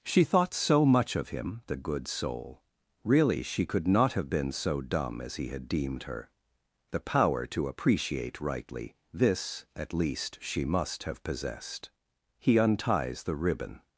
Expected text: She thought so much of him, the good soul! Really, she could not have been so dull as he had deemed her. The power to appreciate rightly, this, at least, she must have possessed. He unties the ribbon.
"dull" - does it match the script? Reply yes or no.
no